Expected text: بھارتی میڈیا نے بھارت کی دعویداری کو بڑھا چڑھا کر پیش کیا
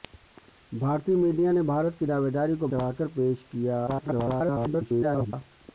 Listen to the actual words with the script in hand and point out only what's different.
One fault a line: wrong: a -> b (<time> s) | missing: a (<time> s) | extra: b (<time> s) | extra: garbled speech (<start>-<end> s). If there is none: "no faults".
missing: بڑھا (2.7 s)
extra: garbled speech (3.9-5.3 s)